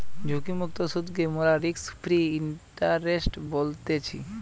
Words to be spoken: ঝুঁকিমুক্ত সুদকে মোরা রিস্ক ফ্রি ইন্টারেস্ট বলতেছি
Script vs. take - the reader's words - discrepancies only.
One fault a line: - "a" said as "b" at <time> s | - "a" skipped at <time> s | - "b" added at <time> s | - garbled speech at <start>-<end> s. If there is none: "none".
none